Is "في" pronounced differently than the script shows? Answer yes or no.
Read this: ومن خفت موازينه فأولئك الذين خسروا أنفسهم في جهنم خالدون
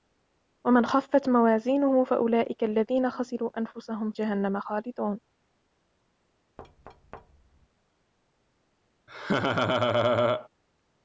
yes